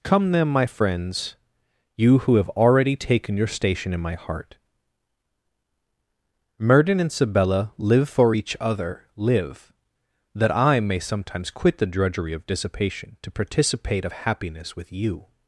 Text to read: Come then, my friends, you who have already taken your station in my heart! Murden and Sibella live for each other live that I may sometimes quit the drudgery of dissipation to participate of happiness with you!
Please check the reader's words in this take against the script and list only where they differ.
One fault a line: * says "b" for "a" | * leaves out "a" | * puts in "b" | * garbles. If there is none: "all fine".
all fine